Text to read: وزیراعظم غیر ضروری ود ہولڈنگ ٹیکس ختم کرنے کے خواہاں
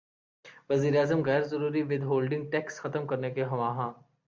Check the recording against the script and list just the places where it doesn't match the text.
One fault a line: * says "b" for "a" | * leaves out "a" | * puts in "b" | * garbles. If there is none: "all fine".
all fine